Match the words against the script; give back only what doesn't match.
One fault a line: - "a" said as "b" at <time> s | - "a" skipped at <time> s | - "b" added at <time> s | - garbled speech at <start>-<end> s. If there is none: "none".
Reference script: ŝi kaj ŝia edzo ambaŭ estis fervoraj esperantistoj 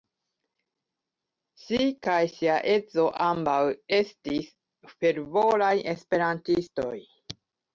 none